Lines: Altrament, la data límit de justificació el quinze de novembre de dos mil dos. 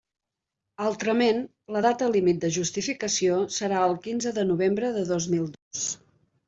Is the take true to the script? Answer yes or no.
no